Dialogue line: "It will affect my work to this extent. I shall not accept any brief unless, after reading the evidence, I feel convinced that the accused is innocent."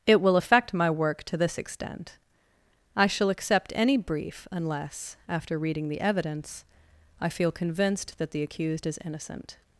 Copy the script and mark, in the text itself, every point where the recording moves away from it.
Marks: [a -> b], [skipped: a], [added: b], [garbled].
"It will affect my work to this extent. I shall [skipped: not] accept any brief unless, after reading the evidence, I feel convinced that the accused is innocent."